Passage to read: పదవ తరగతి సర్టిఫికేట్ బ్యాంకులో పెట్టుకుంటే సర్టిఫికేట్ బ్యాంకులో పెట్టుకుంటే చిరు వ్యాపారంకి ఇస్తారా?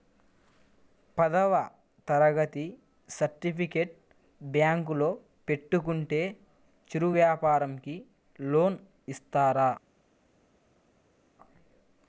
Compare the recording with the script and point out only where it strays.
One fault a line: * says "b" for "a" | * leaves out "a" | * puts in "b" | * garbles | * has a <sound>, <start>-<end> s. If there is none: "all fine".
* leaves out "సర్టిఫికేట్ బ్యాంకులో పెట్టుకుంటే"
* puts in "లోన్"